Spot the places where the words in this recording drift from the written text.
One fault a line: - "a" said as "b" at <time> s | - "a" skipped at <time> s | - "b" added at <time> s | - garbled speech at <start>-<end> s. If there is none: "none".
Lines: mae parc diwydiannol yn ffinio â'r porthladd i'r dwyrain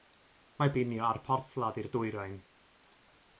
- "parc diwydiannol yn" skipped at 0.7 s